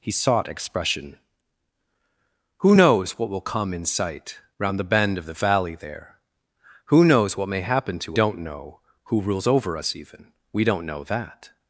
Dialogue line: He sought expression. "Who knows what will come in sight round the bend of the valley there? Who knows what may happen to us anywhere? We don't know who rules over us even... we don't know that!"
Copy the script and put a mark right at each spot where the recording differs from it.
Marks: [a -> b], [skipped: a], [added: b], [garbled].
He sought expression. "Who knows what will come in sight round the bend of the valley there? Who knows what may happen to [skipped: us anywhere? We] don't know who rules over us even... we don't know that!"